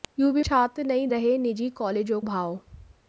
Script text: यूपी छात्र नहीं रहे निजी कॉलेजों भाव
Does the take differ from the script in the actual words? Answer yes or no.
no